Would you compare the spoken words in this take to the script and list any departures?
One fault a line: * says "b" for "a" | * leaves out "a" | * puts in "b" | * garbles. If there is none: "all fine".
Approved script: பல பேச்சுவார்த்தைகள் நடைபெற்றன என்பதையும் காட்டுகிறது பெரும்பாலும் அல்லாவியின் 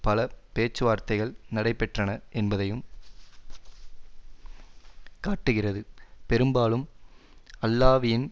all fine